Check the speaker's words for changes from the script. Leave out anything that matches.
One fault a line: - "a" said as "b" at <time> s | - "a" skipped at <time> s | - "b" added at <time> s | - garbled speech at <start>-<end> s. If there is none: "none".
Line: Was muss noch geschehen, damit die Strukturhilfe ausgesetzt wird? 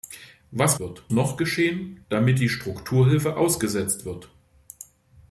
- "muss" said as "wird" at 0.8 s